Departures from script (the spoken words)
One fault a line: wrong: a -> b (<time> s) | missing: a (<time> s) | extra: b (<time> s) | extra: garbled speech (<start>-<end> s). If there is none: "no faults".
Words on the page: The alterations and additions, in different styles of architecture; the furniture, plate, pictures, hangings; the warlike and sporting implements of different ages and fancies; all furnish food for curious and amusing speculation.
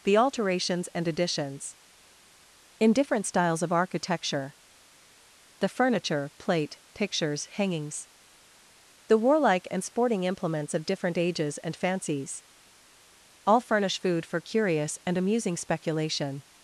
no faults